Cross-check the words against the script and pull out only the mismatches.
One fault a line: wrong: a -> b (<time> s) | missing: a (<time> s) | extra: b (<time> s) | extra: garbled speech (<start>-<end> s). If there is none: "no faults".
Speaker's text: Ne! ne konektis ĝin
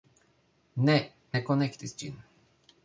no faults